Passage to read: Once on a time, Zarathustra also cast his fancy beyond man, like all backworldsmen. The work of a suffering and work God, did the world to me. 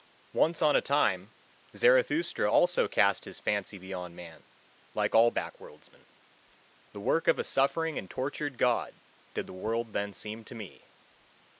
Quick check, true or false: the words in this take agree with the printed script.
false